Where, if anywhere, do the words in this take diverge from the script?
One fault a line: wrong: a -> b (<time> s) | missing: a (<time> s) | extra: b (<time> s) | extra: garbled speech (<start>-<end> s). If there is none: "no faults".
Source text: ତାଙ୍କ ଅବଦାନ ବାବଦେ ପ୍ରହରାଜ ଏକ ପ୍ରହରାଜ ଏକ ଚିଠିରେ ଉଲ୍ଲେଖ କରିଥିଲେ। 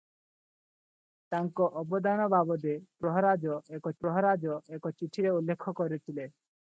no faults